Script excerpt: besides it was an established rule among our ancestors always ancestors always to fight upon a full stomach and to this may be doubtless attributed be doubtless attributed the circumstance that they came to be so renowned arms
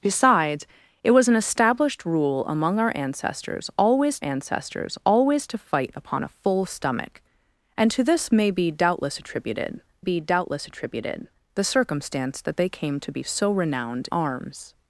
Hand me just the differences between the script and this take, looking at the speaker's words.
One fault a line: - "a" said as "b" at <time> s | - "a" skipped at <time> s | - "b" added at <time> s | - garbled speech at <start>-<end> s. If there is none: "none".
none